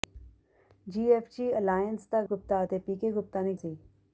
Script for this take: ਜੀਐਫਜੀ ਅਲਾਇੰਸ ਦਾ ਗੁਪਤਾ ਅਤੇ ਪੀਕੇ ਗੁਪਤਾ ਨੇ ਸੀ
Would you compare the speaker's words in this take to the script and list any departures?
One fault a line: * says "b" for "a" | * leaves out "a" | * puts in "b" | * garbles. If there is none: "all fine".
all fine